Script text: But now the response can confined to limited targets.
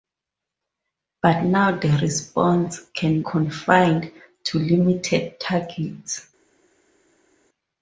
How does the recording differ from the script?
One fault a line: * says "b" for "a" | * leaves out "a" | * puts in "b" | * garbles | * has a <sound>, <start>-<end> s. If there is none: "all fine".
all fine